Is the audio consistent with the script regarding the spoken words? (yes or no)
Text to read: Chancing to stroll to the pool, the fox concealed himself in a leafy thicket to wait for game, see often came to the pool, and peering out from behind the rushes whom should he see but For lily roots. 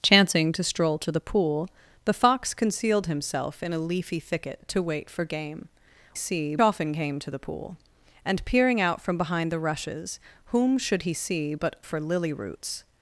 yes